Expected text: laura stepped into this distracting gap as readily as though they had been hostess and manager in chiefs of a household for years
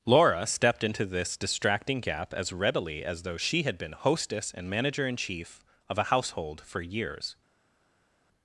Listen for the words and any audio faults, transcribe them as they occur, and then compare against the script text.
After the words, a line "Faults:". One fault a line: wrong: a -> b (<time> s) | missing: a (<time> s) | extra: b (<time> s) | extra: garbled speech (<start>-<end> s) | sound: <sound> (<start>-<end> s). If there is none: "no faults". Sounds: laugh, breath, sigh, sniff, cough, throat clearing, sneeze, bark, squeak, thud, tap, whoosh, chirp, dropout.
laura stepped into this distracting gap as readily as though she had been hostess and manager in chief of a household for years
Faults:
wrong: they -> she (3.3 s)
wrong: chiefs -> chief (5.2 s)